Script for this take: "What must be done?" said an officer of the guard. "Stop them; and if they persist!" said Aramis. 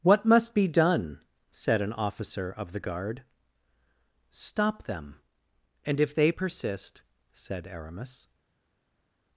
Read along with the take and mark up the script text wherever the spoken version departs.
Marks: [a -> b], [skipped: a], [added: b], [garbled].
"What must be done?" said an officer of the guard. "Stop them; and if they persist!" said Aramis.